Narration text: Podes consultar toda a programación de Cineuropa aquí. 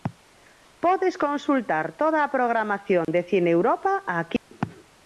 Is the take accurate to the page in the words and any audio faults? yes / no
no